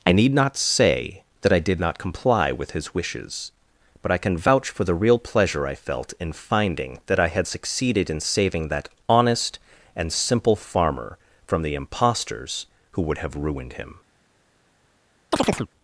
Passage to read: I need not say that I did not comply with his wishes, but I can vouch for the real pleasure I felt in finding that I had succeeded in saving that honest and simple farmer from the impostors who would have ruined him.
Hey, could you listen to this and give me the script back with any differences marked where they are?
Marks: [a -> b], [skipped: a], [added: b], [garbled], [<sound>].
I need not say that I did not comply with his wishes, but I can vouch for the real pleasure I felt in finding that I had succeeded in saving that honest and simple farmer from the impostors who would have ruined him. [chirp]